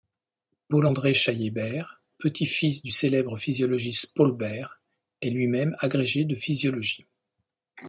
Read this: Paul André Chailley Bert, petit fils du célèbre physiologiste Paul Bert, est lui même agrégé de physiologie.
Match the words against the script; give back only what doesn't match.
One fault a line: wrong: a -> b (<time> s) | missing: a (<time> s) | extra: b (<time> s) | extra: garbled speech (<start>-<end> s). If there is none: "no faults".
no faults